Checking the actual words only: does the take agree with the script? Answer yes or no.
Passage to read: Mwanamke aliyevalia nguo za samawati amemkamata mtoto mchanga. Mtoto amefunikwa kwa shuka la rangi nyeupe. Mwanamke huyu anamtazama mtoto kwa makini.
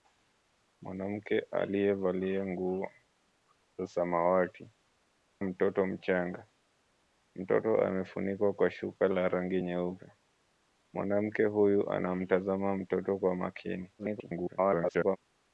no